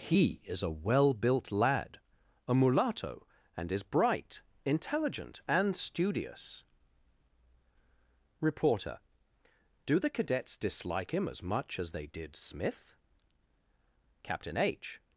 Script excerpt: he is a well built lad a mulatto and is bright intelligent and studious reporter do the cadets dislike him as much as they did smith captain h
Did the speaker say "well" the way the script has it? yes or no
yes